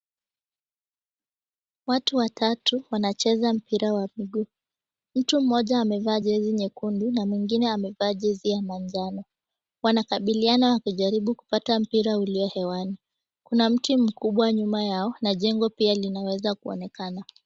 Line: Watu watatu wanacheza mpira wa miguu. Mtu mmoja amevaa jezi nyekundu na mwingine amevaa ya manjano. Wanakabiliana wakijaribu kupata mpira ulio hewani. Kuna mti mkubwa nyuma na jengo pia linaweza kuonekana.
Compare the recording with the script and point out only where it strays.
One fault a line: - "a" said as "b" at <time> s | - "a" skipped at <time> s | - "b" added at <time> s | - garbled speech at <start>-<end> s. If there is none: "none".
- "jezi" added at 8.1 s
- "yao" added at 14.8 s